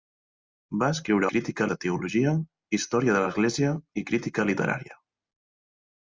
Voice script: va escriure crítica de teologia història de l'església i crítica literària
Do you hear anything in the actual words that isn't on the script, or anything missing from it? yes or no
no